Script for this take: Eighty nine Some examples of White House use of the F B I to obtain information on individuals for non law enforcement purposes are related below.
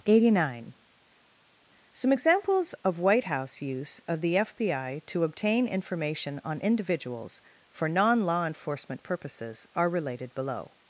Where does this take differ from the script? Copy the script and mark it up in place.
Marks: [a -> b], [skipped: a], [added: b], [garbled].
Eighty nine Some examples of White House use of the F B I to obtain information on individuals for non law enforcement purposes are related below.